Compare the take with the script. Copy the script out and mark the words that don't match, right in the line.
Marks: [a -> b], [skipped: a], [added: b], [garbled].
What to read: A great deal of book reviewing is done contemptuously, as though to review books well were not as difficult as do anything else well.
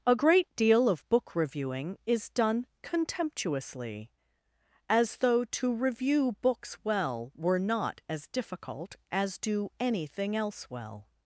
A great deal of book reviewing is done contemptuously, as though to review books well were not as difficult as do anything else well.